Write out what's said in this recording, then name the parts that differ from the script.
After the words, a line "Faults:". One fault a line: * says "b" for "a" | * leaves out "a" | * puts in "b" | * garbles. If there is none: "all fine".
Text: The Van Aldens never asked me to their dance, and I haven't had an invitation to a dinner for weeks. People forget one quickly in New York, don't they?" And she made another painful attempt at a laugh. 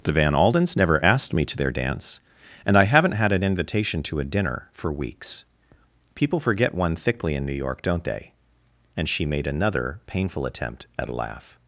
The Van Aldens never asked me to their dance, and I haven't had an invitation to a dinner for weeks. People forget one thickly in New York, don't they?" And she made another painful attempt at a laugh.
Faults:
* says "thickly" for "quickly"